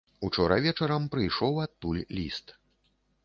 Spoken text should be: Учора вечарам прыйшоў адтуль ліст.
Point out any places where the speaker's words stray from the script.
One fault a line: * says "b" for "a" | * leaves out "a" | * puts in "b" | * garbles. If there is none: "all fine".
all fine